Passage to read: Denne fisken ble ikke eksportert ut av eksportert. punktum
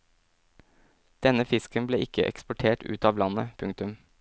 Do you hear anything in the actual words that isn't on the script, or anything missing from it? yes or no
yes